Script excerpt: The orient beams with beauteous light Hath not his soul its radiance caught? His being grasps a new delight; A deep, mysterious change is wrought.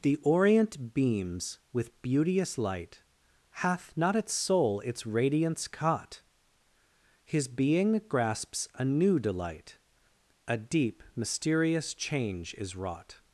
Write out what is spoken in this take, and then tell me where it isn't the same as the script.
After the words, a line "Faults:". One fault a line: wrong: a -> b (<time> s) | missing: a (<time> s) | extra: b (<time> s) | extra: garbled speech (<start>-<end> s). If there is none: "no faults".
The orient beams with beauteous light Hath not its soul its radiance caught? His being grasps a new delight; A deep, mysterious change is wrought.
Faults:
wrong: his -> its (4.2 s)